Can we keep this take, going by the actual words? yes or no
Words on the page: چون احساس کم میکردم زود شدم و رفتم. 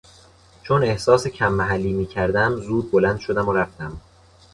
no